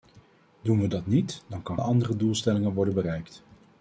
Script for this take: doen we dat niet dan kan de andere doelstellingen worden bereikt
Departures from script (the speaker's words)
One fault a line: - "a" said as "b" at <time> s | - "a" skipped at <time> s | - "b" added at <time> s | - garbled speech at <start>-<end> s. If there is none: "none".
none